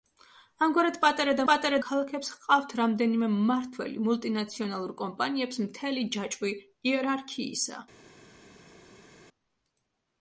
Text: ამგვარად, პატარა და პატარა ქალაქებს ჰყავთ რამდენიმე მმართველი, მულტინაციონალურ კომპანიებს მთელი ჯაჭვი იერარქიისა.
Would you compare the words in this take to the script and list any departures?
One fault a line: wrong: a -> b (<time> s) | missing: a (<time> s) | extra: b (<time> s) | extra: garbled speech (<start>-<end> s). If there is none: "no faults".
no faults